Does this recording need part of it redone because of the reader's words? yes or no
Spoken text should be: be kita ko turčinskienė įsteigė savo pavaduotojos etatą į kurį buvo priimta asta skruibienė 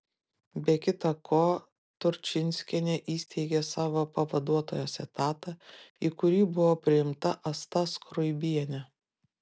no